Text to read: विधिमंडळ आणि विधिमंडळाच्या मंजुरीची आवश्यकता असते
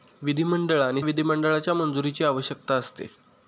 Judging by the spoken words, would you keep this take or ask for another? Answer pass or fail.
pass